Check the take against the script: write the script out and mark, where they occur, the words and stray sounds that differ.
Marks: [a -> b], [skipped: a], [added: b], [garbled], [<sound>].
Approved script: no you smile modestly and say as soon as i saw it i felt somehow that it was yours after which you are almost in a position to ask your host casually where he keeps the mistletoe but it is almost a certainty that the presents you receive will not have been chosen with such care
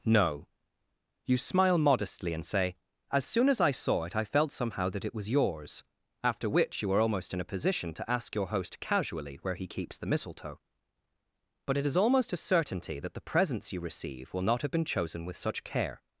no you smile modestly and say as soon as i saw it i felt somehow that it was yours after which you are almost in a position to ask your host casually where he keeps the mistletoe but it is almost a certainty that the presents you receive will not have been chosen with such care